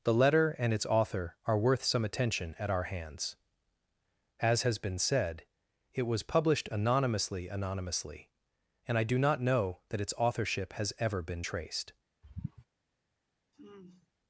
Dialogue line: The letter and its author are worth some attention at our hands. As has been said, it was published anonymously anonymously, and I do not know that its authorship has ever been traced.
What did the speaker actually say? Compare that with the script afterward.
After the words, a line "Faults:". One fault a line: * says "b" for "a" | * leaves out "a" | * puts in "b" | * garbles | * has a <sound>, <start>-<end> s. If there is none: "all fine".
The letter and its author are worth some attention at our hands. As has been said, it was published anonymously anonymously, and I do not know that its authorship has ever been traced.
Faults:
* has a sigh, 12.2-12.7 s
* has a sigh, 13.5-14.1 s